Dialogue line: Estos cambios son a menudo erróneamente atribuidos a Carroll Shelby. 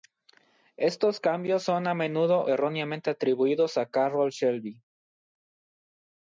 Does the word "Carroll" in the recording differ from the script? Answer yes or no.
no